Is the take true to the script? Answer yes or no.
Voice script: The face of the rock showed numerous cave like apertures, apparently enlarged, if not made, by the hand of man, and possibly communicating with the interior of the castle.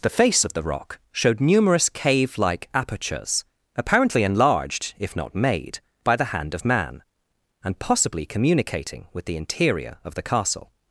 yes